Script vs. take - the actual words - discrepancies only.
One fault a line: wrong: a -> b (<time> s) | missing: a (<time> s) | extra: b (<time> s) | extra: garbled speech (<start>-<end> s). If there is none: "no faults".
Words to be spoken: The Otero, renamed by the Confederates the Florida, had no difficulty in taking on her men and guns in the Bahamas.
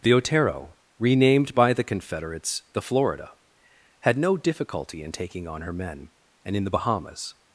missing: guns (6.5 s)